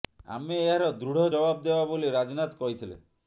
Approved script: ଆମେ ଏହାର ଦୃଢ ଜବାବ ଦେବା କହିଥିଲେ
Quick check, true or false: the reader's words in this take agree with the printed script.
false